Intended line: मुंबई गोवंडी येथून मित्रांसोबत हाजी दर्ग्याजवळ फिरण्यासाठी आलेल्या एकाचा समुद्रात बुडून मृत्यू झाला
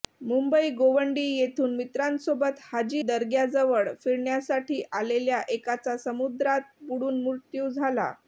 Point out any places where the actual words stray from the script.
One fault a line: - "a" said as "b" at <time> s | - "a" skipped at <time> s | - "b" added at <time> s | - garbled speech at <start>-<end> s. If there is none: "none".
none